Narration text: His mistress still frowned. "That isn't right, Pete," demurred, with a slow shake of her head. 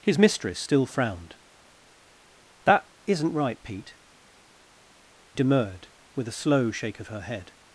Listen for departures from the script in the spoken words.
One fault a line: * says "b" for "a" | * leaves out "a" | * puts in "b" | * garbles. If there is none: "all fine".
all fine